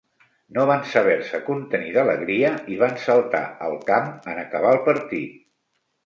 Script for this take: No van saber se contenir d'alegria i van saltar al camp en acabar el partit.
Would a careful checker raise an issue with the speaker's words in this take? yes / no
no